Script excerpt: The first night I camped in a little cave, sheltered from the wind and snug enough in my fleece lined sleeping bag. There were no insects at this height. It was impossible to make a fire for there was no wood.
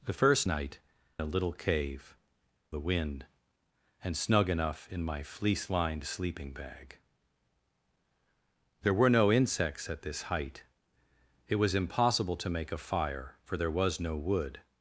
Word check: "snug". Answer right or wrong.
right